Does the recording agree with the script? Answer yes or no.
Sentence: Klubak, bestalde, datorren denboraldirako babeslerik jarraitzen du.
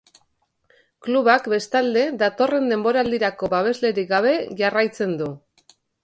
no